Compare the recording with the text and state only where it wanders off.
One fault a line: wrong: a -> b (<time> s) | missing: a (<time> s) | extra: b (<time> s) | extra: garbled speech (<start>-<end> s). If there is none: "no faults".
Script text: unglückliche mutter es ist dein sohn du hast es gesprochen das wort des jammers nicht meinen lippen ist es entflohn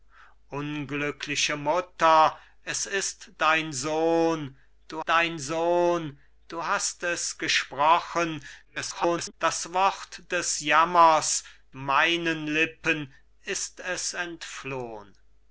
extra: dein sohn du (5.0 s)
extra: garbled speech (8.6-9.3 s)
missing: nicht (11.4 s)